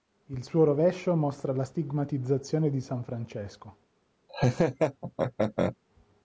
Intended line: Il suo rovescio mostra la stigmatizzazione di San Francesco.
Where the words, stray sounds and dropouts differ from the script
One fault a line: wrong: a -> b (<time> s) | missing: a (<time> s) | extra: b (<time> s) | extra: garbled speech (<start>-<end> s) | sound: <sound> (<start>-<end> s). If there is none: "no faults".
sound: laugh (4.3-5.8 s)